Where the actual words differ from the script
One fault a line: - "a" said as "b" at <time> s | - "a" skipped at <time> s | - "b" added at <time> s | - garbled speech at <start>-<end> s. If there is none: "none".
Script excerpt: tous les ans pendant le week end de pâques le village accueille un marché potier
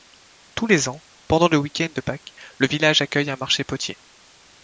none